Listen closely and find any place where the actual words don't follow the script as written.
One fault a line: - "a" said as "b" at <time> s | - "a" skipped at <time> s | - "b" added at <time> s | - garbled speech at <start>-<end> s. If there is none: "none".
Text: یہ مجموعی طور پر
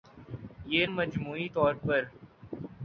none